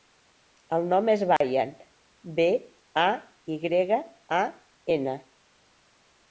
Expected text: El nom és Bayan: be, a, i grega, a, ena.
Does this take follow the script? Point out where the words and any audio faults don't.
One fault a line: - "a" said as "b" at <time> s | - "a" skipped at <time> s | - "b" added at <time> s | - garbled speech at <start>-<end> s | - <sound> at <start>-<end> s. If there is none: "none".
- dropout at 1.4-1.4 s